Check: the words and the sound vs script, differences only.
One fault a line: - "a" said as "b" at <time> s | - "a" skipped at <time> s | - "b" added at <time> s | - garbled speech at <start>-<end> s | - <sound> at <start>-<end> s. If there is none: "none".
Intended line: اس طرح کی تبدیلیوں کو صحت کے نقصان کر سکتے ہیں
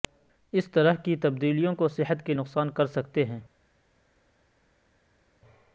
none